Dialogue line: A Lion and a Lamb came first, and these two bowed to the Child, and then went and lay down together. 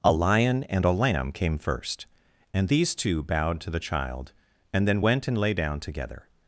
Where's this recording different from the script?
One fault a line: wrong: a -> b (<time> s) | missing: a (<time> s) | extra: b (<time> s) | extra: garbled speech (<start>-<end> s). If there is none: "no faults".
no faults